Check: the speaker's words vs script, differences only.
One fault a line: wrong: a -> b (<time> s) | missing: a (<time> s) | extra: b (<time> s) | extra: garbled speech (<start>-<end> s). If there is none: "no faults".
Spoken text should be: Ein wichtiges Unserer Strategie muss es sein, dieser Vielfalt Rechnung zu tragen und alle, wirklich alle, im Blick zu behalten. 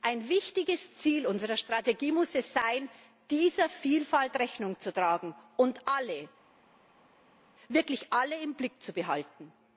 extra: Ziel (0.9 s)